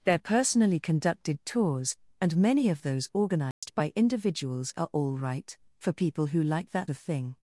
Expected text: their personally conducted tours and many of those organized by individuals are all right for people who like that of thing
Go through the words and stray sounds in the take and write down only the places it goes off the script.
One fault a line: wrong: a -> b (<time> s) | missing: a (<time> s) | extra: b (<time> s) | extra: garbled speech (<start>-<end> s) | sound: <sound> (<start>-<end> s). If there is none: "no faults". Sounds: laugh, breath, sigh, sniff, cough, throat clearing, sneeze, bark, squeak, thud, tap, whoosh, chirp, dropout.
sound: dropout (3.5-3.6 s)